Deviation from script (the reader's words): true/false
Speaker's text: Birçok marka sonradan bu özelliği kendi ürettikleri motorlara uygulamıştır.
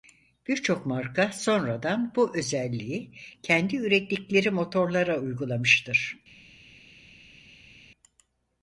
false